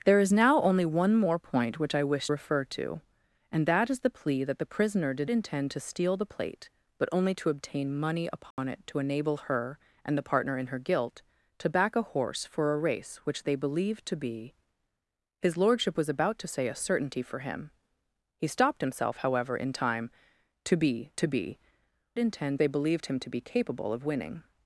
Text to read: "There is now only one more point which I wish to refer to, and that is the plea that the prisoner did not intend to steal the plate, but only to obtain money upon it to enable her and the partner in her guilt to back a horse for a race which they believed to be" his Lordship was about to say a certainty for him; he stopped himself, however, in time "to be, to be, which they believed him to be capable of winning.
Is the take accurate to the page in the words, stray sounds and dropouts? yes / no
no